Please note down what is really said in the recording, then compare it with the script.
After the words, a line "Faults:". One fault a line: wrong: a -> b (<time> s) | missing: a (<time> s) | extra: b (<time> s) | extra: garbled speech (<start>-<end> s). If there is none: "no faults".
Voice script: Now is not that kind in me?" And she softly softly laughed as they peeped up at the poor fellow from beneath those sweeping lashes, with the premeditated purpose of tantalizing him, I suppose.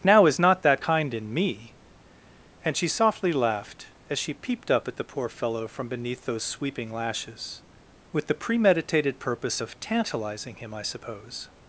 Now is not that kind in me?" And she softly laughed as she peeped up at the poor fellow from beneath those sweeping lashes, with the premeditated purpose of tantalizing him, I suppose.
Faults:
missing: softly (3.3 s)
wrong: they -> she (4.2 s)